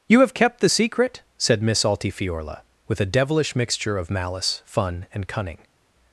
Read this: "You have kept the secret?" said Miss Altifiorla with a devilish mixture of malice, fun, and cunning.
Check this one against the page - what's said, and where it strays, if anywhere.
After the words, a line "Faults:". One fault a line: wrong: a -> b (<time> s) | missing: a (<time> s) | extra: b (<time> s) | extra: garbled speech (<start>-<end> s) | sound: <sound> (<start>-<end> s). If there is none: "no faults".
"You have kept the secret?" said Miss Altifiorla with a devilish mixture of malice, fun, and cunning.
Faults:
no faults